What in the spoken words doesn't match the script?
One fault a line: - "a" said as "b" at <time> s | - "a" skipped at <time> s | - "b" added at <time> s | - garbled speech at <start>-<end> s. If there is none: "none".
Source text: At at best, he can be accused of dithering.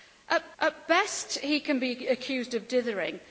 none